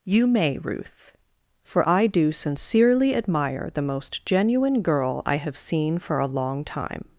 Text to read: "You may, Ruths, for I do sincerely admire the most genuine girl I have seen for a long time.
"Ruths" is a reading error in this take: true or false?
true